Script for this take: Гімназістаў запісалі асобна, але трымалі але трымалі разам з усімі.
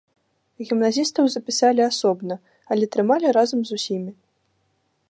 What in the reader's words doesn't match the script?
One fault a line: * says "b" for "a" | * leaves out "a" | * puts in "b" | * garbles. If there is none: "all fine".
* leaves out "але трымалі"